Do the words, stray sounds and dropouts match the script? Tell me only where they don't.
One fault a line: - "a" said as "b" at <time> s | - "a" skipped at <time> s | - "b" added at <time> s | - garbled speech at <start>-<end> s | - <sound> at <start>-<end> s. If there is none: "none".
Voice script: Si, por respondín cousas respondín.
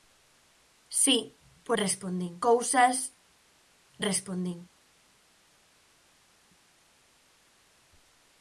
none